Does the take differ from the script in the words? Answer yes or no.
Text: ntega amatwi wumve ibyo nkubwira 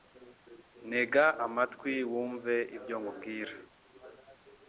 no